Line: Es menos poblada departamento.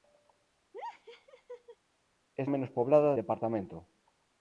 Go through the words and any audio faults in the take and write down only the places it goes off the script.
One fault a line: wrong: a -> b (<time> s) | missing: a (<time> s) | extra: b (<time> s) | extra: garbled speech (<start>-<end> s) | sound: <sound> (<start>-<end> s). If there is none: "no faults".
sound: laugh (0.7-1.8 s)